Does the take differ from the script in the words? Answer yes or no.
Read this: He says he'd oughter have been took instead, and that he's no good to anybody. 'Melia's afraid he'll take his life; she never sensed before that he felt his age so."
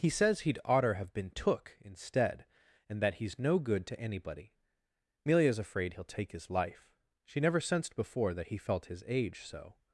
no